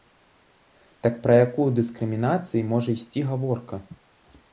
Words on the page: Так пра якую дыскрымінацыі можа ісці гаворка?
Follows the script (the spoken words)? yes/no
yes